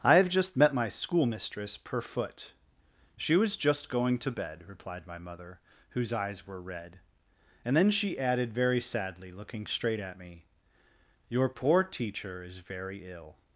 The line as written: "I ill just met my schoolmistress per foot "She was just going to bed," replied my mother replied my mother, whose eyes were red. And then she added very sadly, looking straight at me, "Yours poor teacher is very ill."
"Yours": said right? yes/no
no